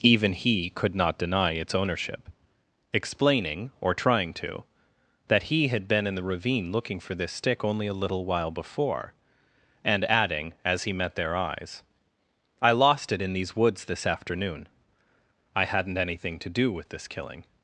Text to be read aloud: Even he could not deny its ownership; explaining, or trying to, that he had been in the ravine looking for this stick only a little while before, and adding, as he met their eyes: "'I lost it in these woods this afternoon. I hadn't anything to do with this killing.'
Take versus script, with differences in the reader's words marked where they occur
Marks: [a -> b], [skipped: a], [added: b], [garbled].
Even he could not deny its ownership; explaining, or trying to, that he had been in the ravine looking for this stick only a little while before, and adding, as he met their eyes: "'I lost it in these woods this afternoon. I hadn't anything to do with this killing.'